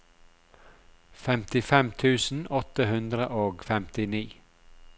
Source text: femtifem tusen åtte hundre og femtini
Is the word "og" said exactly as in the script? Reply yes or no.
yes